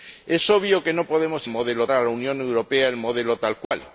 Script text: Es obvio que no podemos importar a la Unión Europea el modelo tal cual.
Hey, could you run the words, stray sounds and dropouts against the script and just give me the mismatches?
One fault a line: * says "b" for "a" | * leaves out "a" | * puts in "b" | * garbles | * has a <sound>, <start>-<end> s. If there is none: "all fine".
* says "modelo" for "importar"
* has a dropout, 3.6-3.7 s